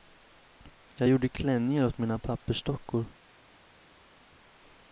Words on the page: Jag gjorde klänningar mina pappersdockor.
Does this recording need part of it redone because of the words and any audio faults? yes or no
yes